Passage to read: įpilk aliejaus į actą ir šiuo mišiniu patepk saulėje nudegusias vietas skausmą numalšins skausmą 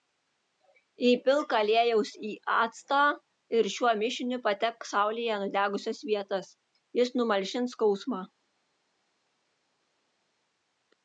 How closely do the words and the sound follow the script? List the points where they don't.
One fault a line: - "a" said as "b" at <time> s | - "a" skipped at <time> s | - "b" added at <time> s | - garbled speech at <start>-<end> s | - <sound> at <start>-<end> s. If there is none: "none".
- "skausmą" said as "jis" at 7.0 s